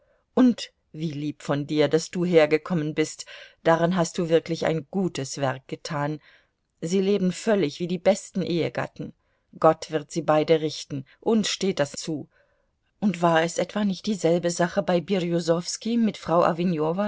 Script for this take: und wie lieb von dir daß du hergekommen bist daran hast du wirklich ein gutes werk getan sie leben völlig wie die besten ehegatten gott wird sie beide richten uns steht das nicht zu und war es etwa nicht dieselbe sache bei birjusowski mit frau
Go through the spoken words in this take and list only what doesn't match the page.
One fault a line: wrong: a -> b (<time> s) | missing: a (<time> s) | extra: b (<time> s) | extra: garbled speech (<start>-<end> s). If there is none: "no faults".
missing: nicht (12.0 s)